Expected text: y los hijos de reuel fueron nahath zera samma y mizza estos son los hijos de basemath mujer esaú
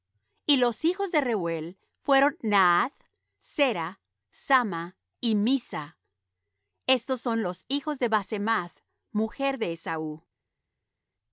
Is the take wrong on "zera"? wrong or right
right